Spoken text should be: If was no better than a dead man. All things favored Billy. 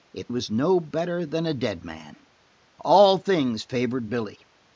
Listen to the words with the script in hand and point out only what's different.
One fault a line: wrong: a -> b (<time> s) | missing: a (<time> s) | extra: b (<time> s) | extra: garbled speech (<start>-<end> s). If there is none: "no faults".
no faults